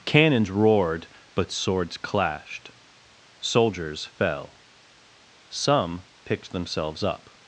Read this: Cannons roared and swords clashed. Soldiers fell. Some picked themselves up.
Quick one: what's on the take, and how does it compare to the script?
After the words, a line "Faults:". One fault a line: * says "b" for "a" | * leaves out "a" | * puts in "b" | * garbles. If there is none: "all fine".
Cannons roared but swords clashed. Soldiers fell. Some picked themselves up.
Faults:
* says "but" for "and"